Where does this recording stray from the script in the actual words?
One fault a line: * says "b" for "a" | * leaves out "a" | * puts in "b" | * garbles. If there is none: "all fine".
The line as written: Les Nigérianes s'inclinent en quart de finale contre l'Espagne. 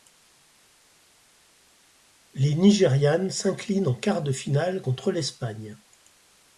all fine